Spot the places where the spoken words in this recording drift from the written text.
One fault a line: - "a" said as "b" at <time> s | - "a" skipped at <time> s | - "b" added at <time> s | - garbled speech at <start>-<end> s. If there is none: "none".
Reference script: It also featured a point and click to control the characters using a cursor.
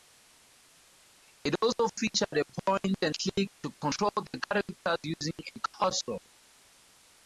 none